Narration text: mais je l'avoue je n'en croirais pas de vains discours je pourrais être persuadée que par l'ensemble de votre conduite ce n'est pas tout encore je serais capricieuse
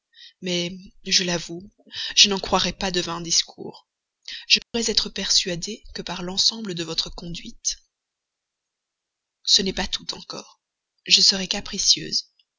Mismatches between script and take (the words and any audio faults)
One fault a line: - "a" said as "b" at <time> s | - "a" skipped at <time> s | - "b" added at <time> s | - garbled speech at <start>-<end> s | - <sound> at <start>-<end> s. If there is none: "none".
- dropout at 4.6-4.7 s